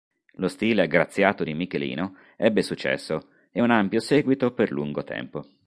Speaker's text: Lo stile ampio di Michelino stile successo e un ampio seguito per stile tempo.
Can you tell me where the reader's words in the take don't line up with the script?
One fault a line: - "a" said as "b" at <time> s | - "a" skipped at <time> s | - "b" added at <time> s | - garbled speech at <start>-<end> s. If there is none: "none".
- "ampio" said as "aggraziato" at 0.8 s
- "stile" said as "ebbe" at 2.4 s
- "stile" said as "lungo" at 4.7 s